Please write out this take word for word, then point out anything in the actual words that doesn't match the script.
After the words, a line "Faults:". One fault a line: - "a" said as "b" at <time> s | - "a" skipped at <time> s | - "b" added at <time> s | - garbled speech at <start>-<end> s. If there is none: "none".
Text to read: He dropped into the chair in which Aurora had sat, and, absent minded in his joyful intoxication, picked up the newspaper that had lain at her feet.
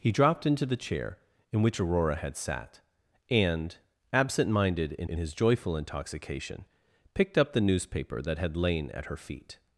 He dropped into the chair in which Aurora had sat, and, absent minded in in his joyful intoxication, picked up the newspaper that had lain at her feet.
Faults:
- "in" added at 5.0 s